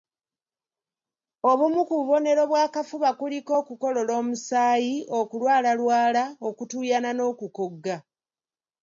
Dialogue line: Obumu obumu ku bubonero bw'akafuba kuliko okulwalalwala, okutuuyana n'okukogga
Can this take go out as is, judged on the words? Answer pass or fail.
fail